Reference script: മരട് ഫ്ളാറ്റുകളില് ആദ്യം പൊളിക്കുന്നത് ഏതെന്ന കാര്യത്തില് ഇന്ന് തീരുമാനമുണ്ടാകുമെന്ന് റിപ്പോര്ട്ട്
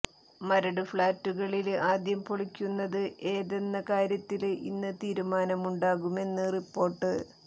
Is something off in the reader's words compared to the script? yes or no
no